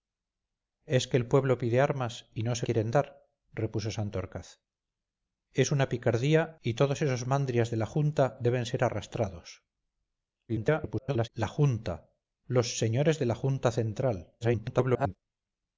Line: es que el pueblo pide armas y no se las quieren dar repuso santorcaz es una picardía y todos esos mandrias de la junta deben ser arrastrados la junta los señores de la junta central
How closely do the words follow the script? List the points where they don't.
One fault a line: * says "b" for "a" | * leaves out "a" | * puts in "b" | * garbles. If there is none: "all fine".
* leaves out "las"
* garbles
* garbles